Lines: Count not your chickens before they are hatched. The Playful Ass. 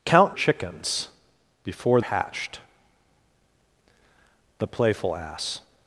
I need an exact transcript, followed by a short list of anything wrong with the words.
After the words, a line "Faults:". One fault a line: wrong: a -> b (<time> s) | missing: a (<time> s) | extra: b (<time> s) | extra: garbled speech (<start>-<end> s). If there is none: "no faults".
Count chickens before hatched. The Playful Ass.
Faults:
missing: not your (0.3 s)
missing: they are (2.0 s)